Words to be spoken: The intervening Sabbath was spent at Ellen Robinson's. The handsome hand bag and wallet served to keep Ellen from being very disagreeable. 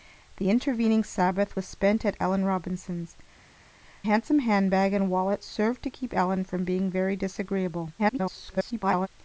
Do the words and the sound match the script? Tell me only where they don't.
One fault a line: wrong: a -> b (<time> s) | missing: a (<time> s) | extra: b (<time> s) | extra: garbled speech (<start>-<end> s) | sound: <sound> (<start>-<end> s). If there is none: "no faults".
missing: The (3.2 s)
extra: garbled speech (8.0-9.1 s)